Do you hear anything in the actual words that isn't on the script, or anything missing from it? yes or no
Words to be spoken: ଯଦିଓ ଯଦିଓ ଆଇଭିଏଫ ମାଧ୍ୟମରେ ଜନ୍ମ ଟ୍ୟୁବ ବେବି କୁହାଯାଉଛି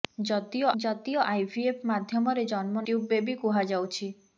no